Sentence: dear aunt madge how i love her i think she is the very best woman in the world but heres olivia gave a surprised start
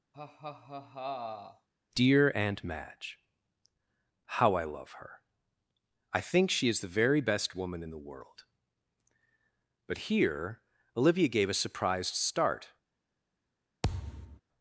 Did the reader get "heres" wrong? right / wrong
wrong